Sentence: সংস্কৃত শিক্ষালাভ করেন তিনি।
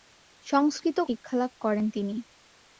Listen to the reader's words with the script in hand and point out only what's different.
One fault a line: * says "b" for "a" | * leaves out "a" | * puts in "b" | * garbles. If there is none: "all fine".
all fine